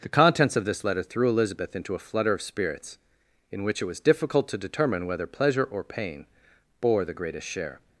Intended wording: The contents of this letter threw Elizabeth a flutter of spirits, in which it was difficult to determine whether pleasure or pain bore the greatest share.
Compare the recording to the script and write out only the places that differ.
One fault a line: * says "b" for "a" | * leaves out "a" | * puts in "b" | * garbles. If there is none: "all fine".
* puts in "into"